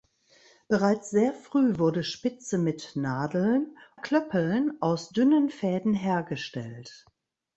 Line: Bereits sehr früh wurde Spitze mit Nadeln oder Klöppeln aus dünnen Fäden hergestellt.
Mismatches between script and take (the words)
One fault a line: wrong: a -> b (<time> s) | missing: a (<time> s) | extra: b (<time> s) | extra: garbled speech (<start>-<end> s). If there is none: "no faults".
missing: oder (3.8 s)